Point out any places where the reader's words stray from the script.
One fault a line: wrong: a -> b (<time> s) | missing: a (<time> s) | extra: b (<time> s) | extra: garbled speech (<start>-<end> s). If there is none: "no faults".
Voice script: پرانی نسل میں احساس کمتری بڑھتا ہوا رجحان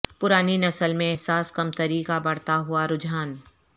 extra: کا (2.0 s)